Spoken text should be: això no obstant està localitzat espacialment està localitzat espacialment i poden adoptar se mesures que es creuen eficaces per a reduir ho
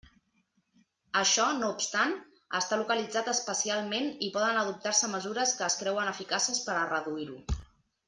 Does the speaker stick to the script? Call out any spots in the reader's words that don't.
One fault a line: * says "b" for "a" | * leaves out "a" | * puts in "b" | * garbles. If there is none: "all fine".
* leaves out "està localitzat espacialment"